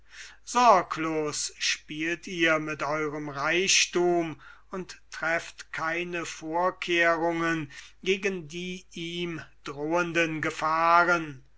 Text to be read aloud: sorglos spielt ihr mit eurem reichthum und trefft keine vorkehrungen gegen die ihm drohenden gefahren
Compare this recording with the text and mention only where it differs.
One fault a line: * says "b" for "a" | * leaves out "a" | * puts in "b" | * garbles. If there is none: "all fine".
all fine